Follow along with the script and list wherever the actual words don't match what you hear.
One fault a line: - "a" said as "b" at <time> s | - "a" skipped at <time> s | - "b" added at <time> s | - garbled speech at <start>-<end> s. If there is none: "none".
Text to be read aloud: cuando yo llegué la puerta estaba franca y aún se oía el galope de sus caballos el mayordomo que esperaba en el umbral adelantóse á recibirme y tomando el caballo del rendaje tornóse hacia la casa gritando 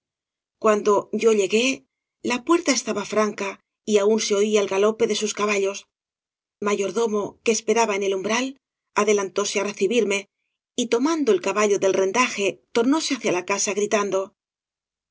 - "el" skipped at 5.8 s